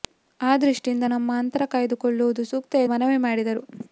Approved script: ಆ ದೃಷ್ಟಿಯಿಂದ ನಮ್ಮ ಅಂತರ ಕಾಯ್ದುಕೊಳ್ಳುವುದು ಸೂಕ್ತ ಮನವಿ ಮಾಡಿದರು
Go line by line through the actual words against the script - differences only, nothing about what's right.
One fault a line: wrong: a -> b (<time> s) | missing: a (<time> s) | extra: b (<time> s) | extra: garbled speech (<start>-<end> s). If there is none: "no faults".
no faults